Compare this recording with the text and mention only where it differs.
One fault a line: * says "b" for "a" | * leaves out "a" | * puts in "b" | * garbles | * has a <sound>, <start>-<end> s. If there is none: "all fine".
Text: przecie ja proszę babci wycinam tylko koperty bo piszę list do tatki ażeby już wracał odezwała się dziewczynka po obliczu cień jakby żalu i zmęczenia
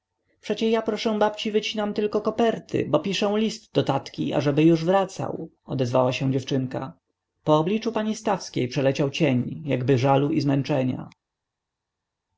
* puts in "pani stawskiej przeleciał"